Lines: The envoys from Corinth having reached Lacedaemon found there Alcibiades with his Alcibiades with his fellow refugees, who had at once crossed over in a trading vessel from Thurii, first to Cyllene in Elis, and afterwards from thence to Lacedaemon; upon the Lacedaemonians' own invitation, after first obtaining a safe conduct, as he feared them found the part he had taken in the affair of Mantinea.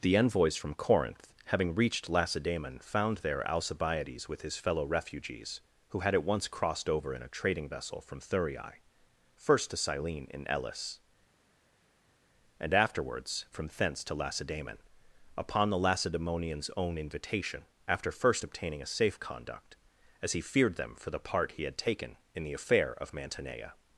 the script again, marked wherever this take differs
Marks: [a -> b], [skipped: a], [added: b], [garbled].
The envoys from Corinth having reached Lacedaemon found there Alcibiades with his [skipped: Alcibiades with his] fellow refugees, who had at once crossed over in a trading vessel from Thurii, first to Cyllene in Elis, and afterwards from thence to Lacedaemon; upon the Lacedaemonians' own invitation, after first obtaining a safe conduct, as he feared them [found -> for] the part he had taken in the affair of Mantinea.